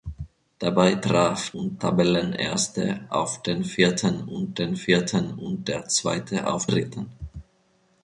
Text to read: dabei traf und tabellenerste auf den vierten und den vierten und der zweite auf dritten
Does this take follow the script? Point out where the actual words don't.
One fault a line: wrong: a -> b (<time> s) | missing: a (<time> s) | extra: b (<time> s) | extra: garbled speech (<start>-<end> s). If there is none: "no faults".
no faults